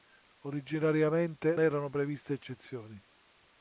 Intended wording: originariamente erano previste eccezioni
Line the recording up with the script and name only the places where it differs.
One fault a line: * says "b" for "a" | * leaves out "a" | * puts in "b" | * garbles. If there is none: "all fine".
all fine